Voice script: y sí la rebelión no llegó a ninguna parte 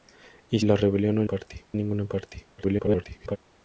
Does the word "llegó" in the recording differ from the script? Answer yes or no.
yes